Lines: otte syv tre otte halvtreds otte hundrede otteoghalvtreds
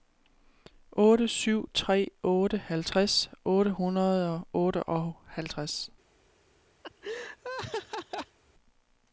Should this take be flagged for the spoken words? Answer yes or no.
yes